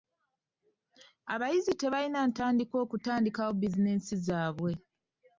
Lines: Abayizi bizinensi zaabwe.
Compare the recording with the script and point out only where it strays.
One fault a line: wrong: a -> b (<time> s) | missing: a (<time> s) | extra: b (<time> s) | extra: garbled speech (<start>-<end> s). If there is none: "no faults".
extra: tebalina ntandikwa okutandikawo (1.8 s)